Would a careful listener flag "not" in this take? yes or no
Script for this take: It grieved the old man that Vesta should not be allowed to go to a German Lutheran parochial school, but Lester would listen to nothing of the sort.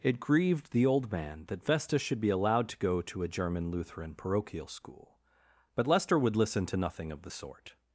yes